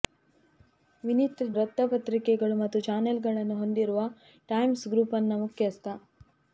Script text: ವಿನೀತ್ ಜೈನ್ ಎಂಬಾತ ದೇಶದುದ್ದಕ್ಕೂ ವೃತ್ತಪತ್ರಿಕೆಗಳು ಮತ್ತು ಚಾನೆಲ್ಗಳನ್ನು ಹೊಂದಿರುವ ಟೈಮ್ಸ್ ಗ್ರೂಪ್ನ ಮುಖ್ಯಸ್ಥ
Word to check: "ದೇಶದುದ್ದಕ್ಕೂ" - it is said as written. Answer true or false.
false